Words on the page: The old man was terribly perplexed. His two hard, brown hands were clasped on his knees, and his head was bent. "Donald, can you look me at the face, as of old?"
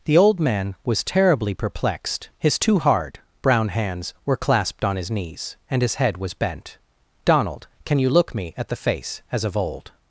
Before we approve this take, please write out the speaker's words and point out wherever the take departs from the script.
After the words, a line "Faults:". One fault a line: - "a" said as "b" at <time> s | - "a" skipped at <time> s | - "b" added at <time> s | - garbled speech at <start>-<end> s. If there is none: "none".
The old man was terribly perplexed. His two hard, brown hands were clasped on his knees, and his head was bent. "Donald, can you look me at the face, as of old?"
Faults:
none